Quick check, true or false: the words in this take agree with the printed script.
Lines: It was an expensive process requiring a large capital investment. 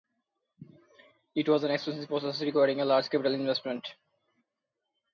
true